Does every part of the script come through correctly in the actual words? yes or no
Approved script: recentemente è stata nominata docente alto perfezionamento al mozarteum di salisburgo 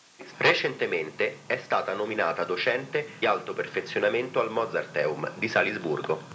yes